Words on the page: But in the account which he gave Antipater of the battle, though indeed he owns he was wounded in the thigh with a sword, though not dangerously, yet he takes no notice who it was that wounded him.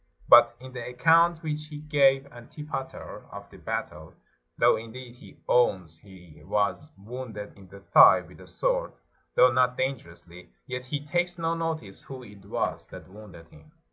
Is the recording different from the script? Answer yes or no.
no